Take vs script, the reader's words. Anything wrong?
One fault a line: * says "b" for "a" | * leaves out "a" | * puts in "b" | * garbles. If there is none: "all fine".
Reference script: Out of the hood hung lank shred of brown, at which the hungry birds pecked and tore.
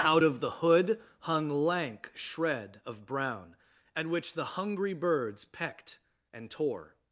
all fine